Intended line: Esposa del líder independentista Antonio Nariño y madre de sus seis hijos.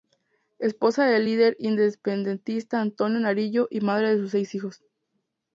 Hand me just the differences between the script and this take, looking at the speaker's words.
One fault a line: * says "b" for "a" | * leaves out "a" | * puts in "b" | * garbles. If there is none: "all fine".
all fine